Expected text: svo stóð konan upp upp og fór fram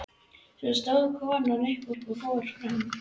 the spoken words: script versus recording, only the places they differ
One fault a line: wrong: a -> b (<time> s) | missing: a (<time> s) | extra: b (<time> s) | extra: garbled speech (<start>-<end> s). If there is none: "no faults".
no faults